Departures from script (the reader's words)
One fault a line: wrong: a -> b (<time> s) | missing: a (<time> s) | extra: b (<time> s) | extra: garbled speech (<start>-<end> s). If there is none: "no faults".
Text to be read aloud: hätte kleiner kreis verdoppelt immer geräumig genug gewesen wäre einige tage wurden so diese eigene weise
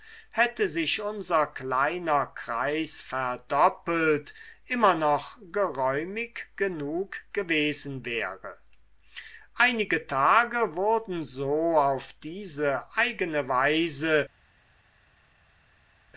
extra: sich unser (0.7 s)
extra: noch (5.0 s)
extra: auf (11.8 s)